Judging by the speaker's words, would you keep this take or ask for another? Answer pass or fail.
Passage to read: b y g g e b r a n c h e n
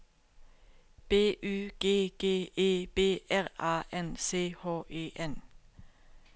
pass